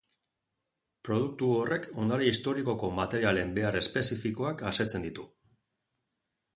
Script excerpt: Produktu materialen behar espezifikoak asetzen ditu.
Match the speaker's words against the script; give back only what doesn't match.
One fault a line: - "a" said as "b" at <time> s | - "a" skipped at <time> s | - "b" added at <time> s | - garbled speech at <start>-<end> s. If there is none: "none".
- "horrek ondare historikoko" added at 1.6 s